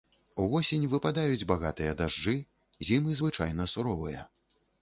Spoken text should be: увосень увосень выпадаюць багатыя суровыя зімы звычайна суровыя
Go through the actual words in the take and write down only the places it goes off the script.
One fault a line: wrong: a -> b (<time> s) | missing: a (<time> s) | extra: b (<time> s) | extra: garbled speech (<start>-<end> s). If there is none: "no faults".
missing: увосень (0.9 s)
wrong: суровыя -> дажджы (2.0 s)